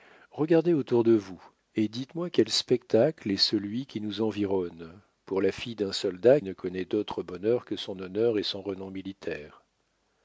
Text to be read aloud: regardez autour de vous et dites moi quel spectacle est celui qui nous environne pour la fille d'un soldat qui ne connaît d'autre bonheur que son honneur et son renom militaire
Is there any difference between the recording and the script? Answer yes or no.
yes